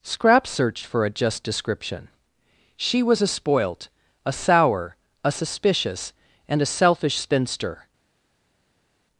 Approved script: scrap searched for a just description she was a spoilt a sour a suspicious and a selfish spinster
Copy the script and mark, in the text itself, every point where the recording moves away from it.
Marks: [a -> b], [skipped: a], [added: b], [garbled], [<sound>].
scrap searched for a just description she was a spoilt a sour a suspicious and a selfish spinster